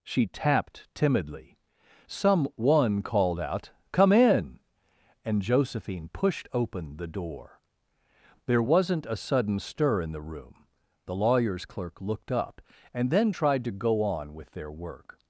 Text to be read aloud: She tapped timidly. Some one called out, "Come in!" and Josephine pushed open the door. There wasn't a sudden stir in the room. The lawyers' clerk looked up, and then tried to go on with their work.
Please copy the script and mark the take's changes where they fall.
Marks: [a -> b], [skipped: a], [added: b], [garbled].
She tapped timidly. Some one called out, "Come in!" and Josephine pushed open the door. There wasn't a sudden stir in the room. The lawyers' clerk looked up, and then tried to go on with their work.